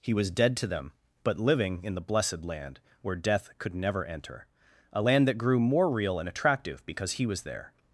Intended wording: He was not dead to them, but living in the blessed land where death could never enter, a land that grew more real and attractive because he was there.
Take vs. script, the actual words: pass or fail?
fail